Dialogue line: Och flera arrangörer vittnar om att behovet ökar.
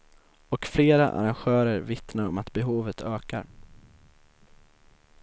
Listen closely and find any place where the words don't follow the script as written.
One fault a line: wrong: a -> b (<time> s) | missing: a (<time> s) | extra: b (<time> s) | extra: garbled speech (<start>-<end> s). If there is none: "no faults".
no faults